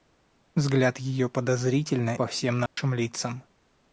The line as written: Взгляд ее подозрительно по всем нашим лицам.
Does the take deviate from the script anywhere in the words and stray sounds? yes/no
yes